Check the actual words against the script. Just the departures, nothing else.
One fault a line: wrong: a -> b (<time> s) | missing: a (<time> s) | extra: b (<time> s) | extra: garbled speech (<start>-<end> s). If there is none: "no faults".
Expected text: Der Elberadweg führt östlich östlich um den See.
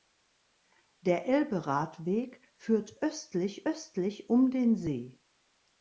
no faults